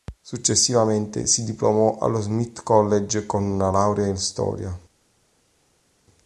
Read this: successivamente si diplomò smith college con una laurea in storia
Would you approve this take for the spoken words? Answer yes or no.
no